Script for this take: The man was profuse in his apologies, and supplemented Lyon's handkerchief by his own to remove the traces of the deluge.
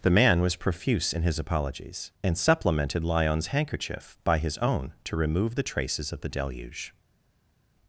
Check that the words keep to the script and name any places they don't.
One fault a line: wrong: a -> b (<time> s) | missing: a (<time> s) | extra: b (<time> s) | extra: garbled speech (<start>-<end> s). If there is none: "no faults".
no faults